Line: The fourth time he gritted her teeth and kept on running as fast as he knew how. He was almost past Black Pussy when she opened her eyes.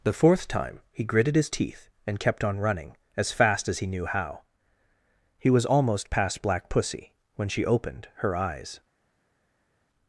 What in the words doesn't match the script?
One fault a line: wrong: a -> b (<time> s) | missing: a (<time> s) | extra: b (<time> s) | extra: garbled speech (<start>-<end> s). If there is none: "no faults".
wrong: her -> his (1.4 s)